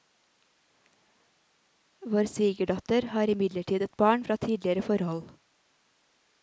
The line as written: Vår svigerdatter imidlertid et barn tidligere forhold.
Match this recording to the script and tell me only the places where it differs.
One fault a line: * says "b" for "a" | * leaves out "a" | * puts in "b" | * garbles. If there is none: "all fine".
* puts in "har"
* puts in "fra"